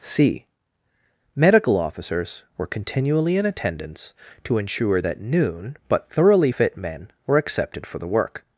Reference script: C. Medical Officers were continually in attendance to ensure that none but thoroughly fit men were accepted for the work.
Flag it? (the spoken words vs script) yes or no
yes